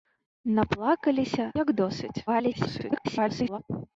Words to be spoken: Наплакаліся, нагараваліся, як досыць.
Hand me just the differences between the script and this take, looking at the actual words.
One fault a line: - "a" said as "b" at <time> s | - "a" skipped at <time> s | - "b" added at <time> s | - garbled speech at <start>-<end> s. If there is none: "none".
- "нагараваліся" skipped at 1.4 s
- garbled speech at 2.3-3.6 s